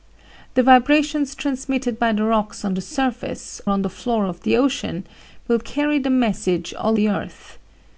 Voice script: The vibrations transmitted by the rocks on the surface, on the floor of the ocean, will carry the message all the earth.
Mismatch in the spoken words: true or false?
false